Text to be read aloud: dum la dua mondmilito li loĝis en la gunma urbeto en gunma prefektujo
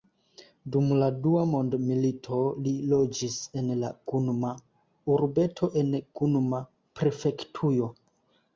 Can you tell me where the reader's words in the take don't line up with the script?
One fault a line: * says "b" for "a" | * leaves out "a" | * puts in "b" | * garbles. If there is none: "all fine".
all fine